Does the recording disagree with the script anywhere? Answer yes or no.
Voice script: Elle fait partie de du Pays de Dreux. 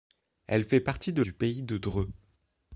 no